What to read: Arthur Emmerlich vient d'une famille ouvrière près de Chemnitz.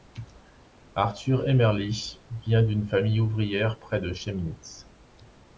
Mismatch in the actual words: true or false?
false